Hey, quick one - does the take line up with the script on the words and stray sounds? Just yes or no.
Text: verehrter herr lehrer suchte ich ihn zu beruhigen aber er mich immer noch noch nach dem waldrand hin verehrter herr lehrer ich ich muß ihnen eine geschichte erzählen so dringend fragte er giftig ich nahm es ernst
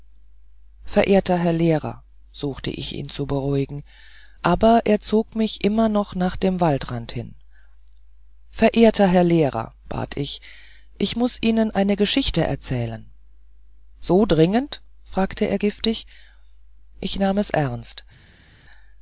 no